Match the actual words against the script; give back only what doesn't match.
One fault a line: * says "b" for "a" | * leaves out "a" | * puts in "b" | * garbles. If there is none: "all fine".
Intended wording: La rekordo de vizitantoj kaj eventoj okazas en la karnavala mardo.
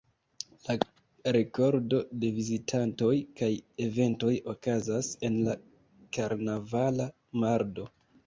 all fine